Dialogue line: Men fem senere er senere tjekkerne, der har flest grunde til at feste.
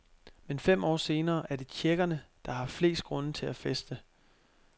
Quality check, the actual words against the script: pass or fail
fail